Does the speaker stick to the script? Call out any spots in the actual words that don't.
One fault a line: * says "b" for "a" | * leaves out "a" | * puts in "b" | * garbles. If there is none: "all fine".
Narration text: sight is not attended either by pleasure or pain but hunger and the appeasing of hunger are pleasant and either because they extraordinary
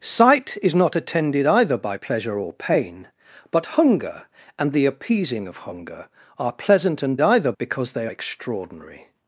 all fine